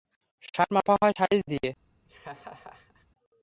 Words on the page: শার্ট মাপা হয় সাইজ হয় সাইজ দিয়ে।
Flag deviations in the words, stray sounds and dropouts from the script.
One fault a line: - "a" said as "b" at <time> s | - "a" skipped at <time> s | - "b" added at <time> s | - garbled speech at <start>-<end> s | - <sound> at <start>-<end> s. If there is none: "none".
- "হয় সাইজ" skipped at 1.4 s
- laugh at 2.1-3.1 s